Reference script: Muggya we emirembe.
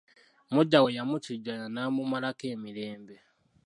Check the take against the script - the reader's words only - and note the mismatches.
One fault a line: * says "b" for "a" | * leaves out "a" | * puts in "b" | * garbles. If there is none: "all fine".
* puts in "yamukijjanya n'amumalako"